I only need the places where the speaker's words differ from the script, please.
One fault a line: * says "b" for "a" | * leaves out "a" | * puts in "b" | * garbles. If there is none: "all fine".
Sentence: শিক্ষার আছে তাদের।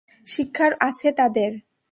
all fine